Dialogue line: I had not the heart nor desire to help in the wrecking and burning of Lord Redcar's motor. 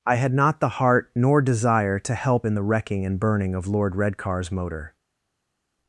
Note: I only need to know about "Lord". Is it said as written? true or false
true